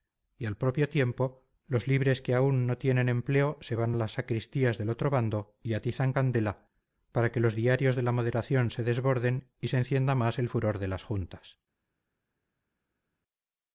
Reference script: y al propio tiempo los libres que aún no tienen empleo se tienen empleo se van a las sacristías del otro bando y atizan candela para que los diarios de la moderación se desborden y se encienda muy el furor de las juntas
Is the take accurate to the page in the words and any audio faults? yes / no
no